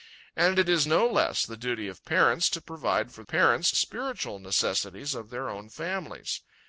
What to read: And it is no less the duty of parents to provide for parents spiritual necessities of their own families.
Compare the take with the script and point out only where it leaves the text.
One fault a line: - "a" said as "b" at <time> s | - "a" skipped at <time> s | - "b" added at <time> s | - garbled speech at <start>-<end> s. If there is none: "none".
none